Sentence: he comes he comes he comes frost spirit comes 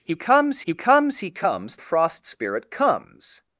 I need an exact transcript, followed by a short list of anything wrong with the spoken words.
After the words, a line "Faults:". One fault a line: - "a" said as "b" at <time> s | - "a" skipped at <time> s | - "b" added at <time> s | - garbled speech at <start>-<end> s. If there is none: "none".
he comes he comes he comes frost spirit comes
Faults:
none